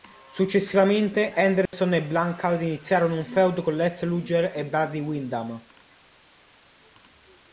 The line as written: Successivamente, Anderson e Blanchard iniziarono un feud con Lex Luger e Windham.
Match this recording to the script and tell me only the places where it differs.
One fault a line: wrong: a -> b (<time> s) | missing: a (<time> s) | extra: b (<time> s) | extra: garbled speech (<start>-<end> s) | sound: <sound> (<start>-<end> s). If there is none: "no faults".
sound: dropout (1.7-1.7 s)
extra: Barry (4.7 s)